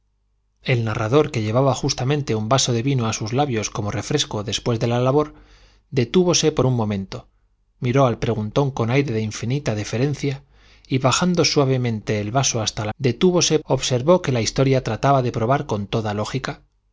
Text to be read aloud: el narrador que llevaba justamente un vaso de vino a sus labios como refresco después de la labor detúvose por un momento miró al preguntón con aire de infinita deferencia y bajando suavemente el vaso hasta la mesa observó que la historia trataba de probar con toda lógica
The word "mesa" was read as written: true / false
false